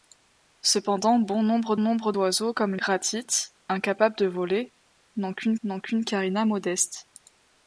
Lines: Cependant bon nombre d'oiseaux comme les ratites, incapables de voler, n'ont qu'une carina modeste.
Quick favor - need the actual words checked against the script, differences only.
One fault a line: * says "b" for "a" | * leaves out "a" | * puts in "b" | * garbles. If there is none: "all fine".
* puts in "nombre"
* leaves out "les"
* puts in "n'ont qu'une"